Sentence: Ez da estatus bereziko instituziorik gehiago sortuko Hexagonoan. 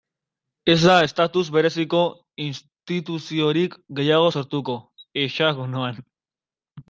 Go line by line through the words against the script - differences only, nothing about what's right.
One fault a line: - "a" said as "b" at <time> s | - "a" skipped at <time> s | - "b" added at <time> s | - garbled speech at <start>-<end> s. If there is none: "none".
none